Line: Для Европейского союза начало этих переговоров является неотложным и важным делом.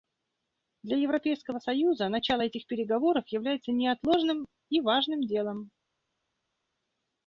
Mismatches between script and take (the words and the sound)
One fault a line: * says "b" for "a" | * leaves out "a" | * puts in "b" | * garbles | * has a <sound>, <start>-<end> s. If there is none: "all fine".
all fine